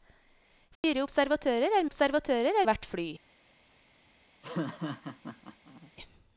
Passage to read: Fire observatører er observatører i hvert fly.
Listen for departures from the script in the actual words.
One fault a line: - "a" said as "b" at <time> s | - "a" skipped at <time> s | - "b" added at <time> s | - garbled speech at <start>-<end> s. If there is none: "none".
none